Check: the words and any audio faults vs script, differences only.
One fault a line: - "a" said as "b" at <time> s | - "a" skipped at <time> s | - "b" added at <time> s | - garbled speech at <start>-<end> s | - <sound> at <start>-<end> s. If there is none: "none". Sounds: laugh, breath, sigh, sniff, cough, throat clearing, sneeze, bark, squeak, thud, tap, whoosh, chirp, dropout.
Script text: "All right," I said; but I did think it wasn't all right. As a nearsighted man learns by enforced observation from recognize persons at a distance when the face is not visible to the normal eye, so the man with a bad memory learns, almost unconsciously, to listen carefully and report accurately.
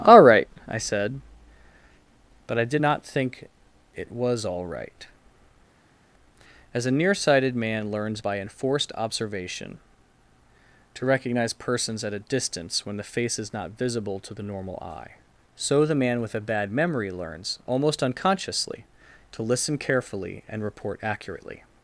- "not" added at 2.8 s
- "wasn't" said as "was" at 4.1 s
- "from" said as "to" at 10.9 s